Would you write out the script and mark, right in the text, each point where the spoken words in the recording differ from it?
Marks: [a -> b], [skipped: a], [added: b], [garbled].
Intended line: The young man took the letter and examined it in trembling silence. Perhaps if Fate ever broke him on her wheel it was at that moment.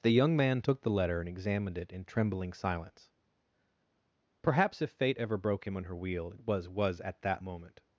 The young man took the letter and examined it in trembling silence. Perhaps if Fate ever broke him on her wheel it was [added: was] at that moment.